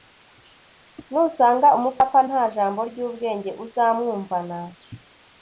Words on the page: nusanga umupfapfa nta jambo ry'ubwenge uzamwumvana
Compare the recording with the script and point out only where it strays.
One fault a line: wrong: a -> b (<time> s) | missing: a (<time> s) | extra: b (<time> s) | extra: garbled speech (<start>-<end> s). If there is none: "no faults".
no faults